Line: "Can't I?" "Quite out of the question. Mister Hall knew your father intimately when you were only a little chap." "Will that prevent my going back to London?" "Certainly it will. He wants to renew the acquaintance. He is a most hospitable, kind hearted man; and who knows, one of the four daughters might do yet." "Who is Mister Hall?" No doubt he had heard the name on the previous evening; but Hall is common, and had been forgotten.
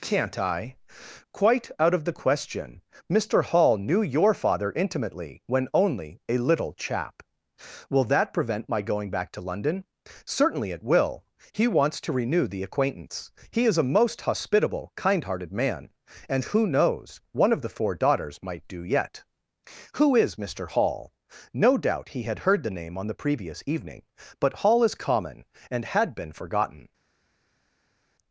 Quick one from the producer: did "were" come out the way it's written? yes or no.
no